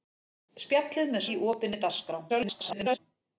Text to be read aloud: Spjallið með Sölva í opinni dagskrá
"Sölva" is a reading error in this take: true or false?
true